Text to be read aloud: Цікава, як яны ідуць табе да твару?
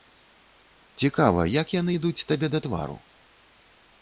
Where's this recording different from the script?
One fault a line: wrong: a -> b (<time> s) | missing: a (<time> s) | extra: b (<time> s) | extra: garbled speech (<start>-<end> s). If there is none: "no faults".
no faults